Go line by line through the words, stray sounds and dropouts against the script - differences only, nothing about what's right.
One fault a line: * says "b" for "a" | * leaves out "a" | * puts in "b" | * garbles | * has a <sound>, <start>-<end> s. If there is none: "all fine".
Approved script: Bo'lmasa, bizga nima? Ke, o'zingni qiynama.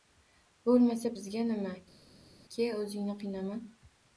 all fine